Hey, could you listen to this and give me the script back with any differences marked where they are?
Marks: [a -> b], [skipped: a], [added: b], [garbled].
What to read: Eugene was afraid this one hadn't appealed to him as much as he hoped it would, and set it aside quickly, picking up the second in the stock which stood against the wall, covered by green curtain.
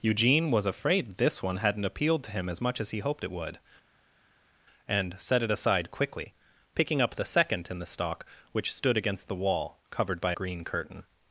Eugene was afraid this one hadn't appealed to him as much as he hoped it would, and set it aside quickly, picking up the second in the stock which stood against the wall, covered by green curtain.